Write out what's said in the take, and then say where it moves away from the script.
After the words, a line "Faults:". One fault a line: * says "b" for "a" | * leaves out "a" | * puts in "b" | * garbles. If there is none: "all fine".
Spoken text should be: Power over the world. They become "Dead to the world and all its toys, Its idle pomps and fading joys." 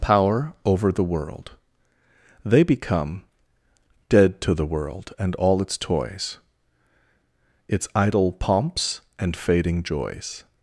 Power over the world. They become "Dead to the world and all its toys, Its idle pomps and fading joys."
Faults:
all fine